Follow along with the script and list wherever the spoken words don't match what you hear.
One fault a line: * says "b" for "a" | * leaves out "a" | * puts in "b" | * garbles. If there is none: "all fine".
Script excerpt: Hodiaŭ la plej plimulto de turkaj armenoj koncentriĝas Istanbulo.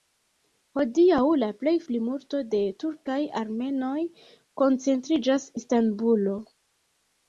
all fine